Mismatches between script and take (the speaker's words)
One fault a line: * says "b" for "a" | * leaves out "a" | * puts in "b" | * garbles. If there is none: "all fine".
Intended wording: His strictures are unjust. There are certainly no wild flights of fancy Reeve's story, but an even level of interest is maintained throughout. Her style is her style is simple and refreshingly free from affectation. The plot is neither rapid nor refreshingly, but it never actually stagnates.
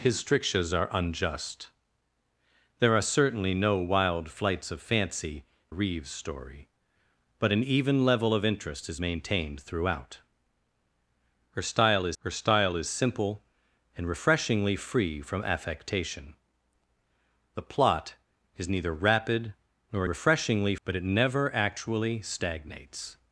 all fine